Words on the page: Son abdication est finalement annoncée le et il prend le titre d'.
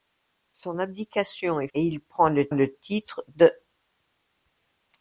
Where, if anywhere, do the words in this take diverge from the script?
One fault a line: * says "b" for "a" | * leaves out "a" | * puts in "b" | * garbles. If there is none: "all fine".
* leaves out "finalement annoncée le"
* puts in "le"